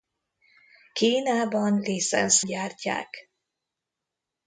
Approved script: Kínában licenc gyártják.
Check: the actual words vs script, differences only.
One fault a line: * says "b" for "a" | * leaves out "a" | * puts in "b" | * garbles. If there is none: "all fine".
all fine